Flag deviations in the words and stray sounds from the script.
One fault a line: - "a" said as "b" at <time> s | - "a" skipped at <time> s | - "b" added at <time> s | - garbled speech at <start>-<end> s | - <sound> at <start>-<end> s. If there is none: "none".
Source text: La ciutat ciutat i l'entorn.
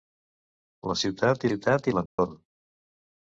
- dropout at 2.1-2.2 s